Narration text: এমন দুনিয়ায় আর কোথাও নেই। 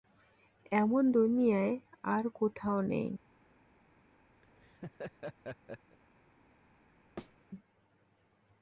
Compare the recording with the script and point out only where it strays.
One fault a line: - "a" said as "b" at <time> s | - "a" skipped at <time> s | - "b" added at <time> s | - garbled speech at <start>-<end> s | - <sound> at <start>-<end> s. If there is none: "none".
- laugh at 4.4-6.0 s
- thud at 7.2-7.4 s